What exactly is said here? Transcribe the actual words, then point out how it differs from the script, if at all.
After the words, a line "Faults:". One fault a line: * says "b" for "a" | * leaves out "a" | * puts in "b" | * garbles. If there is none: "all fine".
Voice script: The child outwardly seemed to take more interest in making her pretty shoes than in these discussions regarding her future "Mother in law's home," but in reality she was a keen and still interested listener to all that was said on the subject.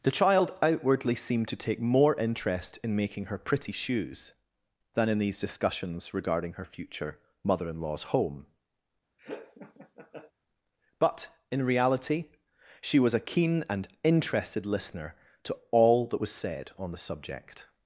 The child outwardly seemed to take more interest in making her pretty shoes than in these discussions regarding her future "Mother in law's home," but in reality she was a keen and interested listener to all that was said on the subject.
Faults:
* leaves out "still"